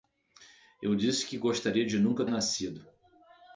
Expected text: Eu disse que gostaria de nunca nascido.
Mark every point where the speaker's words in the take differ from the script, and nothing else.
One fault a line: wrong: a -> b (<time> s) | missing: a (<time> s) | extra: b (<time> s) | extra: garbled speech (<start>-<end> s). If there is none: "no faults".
no faults